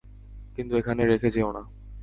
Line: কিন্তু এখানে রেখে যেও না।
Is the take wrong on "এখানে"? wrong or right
right